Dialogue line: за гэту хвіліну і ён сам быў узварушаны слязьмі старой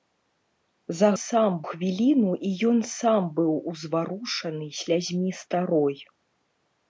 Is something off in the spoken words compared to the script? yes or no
yes